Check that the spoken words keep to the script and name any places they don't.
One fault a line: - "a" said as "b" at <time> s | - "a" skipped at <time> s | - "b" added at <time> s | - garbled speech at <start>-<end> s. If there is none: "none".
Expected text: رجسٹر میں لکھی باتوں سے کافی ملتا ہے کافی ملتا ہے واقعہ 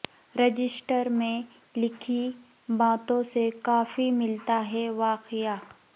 - "کافی ملتا ہے" skipped at 4.9 s